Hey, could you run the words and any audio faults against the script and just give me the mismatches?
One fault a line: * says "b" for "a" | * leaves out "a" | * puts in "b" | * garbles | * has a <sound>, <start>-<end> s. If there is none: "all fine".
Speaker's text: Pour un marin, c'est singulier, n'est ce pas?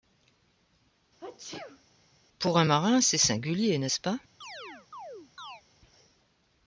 * has a sneeze, 1.2-1.8 s
* has a chirp, 4.4-5.6 s